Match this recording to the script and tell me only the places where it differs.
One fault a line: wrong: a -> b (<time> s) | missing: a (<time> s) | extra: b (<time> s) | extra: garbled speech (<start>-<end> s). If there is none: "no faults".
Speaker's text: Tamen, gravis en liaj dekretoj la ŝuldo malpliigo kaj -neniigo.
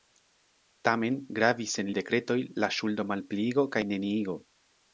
missing: liaj (1.9 s)